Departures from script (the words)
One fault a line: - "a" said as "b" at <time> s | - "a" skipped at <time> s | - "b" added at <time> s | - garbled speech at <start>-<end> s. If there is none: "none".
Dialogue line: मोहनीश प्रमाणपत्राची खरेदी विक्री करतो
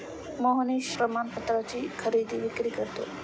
none